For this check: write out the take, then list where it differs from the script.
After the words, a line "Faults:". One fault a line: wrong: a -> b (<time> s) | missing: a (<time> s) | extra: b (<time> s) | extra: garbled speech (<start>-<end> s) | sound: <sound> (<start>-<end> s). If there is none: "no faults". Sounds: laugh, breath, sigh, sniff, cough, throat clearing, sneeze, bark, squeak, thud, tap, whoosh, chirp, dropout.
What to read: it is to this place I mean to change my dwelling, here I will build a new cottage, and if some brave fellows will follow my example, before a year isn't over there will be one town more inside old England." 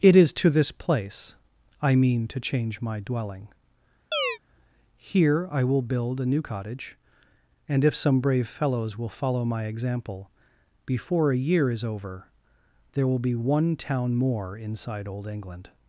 it is to this place I mean to change my dwelling, here I will build a new cottage, and if some brave fellows will follow my example, before a year is over there will be one town more inside old England."
Faults:
sound: chirp (4.1-4.4 s)
wrong: isn't -> is (11.7 s)